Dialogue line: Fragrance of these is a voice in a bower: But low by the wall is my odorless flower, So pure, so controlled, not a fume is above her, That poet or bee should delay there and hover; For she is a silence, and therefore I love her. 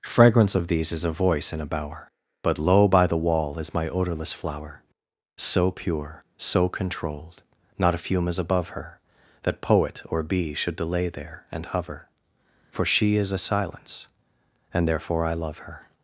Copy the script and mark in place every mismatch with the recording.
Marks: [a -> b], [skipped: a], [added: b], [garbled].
Fragrance of these is a voice in a bower: But low by the wall is my odorless flower, So pure, so controlled, not a fume is above her, That poet or bee should delay there and hover; For she is a silence, and therefore I love her.